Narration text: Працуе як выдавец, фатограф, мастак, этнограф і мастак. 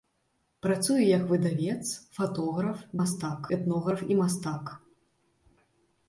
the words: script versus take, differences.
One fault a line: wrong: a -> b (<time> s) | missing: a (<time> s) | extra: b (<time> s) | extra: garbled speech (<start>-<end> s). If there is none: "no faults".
no faults